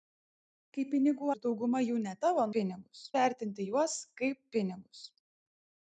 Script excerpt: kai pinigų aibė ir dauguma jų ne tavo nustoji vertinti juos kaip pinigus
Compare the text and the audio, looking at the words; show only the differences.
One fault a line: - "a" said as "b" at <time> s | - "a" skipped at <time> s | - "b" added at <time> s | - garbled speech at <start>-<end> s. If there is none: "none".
- "aibė" skipped at 1.3 s
- "nustoji" said as "pinigus" at 2.6 s